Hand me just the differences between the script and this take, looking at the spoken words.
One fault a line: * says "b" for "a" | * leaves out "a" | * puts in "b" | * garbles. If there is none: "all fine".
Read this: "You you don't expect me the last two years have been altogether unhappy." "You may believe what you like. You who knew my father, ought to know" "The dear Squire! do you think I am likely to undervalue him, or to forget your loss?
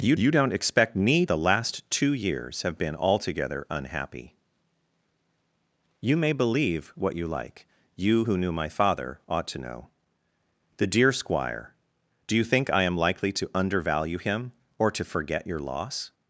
all fine